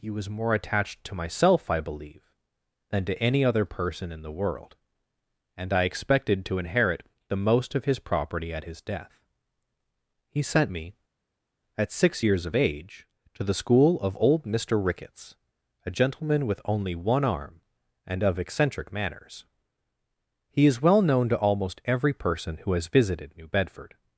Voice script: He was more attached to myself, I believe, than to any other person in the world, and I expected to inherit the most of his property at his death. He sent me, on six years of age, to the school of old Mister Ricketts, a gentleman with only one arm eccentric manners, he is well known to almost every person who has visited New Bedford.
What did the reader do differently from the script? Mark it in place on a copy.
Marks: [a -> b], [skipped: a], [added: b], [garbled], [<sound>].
He was more attached to myself, I believe, than to any other person in the world, and I expected to inherit the most of his property at his death. He sent me, [on -> at] six years of age, to the school of old Mister Ricketts, a gentleman with only one arm [added: and of] eccentric manners, he is well known to almost every person who has visited New Bedford.